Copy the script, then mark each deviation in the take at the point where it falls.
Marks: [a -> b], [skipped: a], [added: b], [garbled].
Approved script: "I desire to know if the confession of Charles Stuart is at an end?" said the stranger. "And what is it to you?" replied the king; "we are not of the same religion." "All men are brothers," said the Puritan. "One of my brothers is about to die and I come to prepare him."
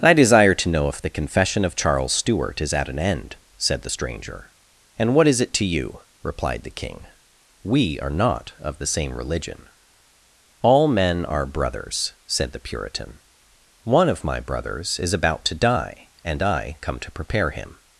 "I desire to know if the confession of Charles Stuart is at an end?" said the stranger. "And what is it to you?" replied the king; "we are not of the same religion." "All men are brothers," said the Puritan. "One of my brothers is about to die and I come to prepare him."